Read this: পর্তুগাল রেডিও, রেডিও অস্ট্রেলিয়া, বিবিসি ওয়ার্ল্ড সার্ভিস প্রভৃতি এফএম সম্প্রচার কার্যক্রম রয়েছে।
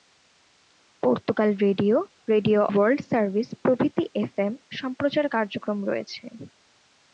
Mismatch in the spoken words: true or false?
true